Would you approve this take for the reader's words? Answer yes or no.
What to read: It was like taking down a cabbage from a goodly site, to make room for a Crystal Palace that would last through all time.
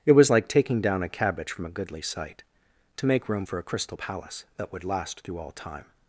yes